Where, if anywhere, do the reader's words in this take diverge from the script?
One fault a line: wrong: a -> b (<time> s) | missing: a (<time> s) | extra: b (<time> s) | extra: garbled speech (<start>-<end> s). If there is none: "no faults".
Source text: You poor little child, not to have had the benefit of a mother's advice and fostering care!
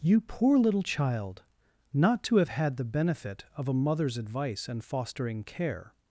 no faults